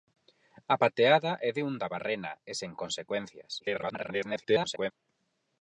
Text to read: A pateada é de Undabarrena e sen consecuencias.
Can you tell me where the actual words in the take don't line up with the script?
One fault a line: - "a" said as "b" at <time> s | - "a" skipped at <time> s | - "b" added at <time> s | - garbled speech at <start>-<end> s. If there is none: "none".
- garbled speech at 3.6-4.9 s